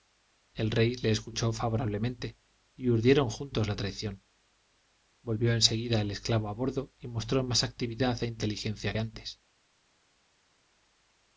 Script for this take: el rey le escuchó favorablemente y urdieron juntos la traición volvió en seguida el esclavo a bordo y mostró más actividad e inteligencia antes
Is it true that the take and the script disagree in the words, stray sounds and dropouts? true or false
false